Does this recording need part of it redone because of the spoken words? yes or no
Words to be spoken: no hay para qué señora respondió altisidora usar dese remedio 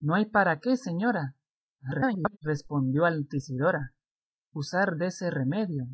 yes